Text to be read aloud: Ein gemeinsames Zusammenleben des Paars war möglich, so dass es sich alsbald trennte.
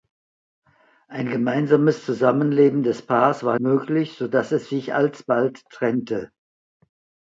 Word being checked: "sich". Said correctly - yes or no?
yes